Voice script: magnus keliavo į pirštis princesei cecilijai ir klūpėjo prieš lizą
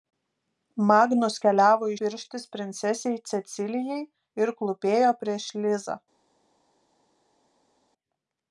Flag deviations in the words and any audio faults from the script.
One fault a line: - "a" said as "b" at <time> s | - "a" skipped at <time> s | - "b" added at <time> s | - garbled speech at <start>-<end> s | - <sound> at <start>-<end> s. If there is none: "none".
none